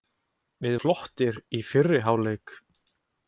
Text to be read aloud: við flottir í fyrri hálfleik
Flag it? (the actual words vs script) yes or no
no